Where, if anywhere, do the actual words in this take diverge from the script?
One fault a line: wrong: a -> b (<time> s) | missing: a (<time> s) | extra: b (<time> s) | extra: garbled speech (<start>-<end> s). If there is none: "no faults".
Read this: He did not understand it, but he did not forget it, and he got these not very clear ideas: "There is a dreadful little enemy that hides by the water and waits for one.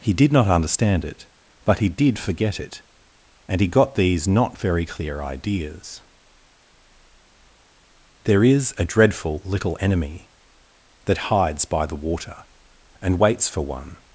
missing: not (2.2 s)